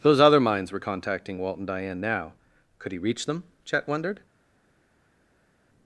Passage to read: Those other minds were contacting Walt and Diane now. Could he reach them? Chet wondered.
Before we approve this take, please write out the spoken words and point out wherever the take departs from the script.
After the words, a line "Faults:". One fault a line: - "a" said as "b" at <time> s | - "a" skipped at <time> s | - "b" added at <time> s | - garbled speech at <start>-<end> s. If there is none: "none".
Those other minds were contacting Walt and Diane now. Could he reach them? Chet wondered.
Faults:
none